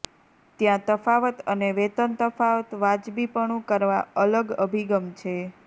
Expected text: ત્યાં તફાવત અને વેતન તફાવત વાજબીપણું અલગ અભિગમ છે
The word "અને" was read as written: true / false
true